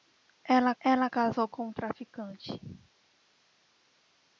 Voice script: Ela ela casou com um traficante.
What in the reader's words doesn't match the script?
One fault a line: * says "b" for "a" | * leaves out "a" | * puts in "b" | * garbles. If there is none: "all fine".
all fine